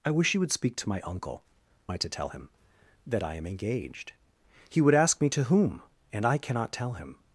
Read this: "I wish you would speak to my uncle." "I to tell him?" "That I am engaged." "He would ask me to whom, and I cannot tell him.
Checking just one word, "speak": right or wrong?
right